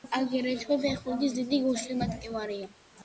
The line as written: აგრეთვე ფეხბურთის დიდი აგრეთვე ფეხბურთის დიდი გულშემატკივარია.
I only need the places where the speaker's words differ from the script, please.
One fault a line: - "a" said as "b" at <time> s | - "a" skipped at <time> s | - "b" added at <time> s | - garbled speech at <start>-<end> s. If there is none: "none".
- "აგრეთვე ფეხბურთის დიდი" skipped at 1.6 s